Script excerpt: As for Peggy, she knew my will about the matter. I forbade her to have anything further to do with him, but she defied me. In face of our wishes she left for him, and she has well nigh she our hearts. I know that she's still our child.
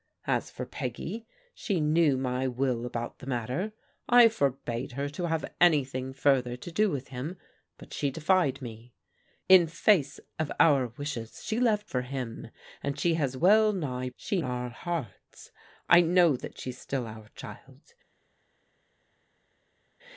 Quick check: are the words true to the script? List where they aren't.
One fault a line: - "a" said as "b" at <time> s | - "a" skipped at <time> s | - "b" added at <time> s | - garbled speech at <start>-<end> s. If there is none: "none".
none